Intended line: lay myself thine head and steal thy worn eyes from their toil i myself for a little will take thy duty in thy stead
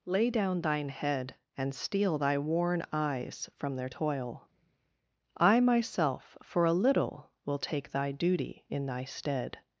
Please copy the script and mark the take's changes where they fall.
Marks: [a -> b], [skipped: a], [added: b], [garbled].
lay [myself -> down] thine head and steal thy worn eyes from their toil i myself for a little will take thy duty in thy stead